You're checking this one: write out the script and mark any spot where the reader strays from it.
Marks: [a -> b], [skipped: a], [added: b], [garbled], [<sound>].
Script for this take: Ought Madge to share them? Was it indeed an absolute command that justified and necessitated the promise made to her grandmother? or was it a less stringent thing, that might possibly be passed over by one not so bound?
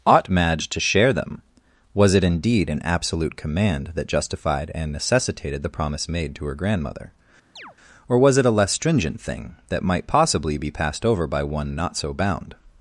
Ought Madge to share them? Was it indeed an absolute command that justified and necessitated the promise made to her grandmother? [chirp] or was it a less stringent thing, that might possibly be passed over by one not so bound?